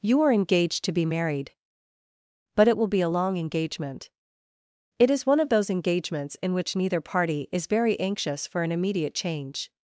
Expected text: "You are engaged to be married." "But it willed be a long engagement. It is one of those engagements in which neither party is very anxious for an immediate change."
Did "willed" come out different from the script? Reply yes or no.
yes